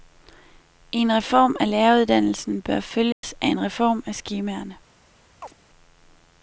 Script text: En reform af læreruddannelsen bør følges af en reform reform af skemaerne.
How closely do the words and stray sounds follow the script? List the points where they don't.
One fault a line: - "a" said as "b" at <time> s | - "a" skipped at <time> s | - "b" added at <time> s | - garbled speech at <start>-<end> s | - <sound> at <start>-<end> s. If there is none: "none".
- dropout at 3.1-3.2 s
- "reform" skipped at 4.0 s
- chirp at 5.4-5.5 s